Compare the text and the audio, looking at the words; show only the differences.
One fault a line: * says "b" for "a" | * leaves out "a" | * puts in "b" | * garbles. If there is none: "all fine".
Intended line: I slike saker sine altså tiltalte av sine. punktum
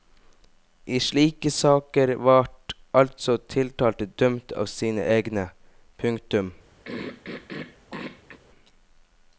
* says "vart" for "sine"
* puts in "dømt"
* puts in "egne"